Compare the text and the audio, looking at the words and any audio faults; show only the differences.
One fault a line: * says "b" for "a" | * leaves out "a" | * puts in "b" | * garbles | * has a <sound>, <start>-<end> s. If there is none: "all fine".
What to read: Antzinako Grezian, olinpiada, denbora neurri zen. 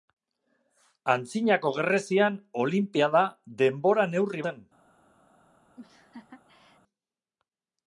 * has a laugh, 5.8-6.8 s